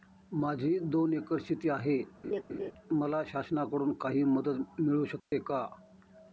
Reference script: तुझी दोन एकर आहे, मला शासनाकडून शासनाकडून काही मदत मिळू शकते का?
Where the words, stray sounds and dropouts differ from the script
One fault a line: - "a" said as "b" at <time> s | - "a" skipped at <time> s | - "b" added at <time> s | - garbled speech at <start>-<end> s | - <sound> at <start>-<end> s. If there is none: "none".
- "तुझी" said as "माझी" at 0.3 s
- "शेती" added at 1.4 s
- laugh at 2.2-2.7 s
- "शासनाकडून" skipped at 3.9 s
- dropout at 5.2-5.3 s